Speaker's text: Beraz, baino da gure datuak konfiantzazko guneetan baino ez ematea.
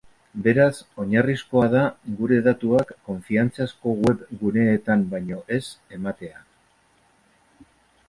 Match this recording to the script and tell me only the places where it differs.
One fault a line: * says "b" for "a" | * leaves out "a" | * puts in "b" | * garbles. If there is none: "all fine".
* says "oinarrizkoa" for "baino"
* puts in "web"